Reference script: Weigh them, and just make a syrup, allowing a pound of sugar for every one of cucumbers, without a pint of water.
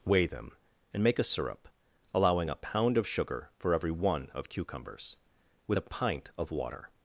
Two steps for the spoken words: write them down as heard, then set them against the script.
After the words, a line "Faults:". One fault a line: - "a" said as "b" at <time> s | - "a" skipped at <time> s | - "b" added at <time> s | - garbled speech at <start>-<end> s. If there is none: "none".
Weigh them, and make a syrup, allowing a pound of sugar for every one of cucumbers, with a pint of water.
Faults:
- "just" skipped at 1.0 s
- "without" said as "with" at 5.7 s